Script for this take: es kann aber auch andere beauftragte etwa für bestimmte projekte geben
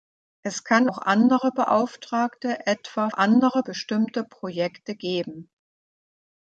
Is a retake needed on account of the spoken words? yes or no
yes